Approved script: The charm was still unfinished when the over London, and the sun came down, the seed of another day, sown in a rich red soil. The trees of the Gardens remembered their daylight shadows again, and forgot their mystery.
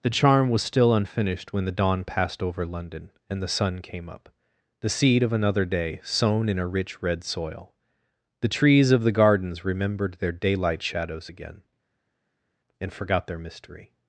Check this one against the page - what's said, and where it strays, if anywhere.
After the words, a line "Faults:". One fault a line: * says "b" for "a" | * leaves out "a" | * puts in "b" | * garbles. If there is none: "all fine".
The charm was still unfinished when the dawn passed over London, and the sun came up, the seed of another day, sown in a rich red soil. The trees of the Gardens remembered their daylight shadows again, and forgot their mystery.
Faults:
* puts in "dawn passed"
* says "up" for "down"